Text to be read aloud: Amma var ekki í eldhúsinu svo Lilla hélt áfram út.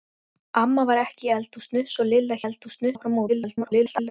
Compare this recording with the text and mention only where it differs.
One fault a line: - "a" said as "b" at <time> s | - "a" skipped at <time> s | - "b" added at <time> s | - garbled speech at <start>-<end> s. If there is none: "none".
- "hélt" said as "eldhúsinu" at 2.4 s
- garbled speech at 3.3-4.1 s